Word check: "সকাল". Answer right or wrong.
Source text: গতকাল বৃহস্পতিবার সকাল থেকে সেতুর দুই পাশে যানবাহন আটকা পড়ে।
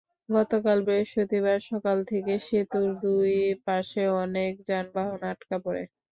right